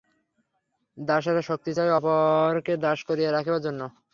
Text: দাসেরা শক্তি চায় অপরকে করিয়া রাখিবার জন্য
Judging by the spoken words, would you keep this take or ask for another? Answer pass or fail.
fail